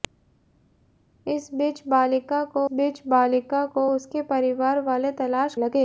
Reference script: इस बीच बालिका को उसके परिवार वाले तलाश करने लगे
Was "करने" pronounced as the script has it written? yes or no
no